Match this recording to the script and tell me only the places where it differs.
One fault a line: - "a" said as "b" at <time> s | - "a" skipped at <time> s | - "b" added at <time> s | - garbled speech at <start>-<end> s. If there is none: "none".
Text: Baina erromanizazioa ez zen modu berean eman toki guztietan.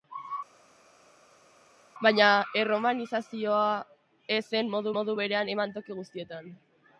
- "modu" added at 5.0 s